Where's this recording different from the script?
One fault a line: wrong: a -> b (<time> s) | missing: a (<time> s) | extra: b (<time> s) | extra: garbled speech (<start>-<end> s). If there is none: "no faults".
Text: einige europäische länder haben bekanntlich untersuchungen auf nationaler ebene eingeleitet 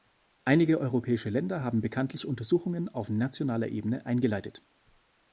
no faults